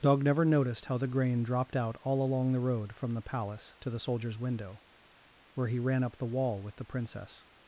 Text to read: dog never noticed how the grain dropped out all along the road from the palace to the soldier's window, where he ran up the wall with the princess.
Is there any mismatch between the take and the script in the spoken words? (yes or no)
no